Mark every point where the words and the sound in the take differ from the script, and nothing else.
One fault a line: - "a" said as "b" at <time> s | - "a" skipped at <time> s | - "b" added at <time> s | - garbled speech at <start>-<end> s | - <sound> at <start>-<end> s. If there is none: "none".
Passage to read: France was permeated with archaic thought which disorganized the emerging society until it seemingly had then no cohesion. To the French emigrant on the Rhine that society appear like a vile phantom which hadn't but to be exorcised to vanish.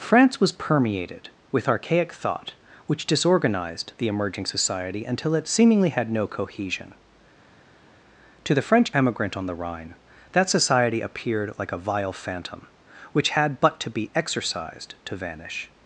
- "then" skipped at 6.1 s
- "appear" said as "appeared" at 11.0 s
- "hadn't" said as "had" at 13.3 s